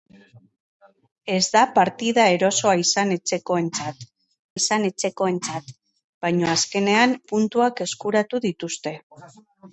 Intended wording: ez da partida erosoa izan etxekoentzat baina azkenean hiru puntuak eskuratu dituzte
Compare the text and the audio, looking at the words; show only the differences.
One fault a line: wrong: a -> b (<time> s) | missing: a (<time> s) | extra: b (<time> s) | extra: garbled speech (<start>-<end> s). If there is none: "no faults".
extra: izan etxekoentzat (4.6 s)
missing: hiru (7.2 s)